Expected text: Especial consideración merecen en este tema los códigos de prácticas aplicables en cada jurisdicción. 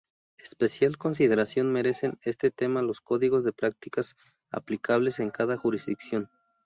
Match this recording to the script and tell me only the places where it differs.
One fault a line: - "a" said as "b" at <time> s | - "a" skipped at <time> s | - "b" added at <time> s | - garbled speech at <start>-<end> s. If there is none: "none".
none